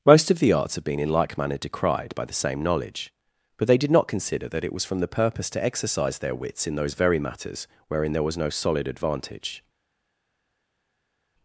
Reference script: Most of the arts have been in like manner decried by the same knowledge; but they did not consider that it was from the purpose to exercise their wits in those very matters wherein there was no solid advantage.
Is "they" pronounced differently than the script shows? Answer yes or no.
no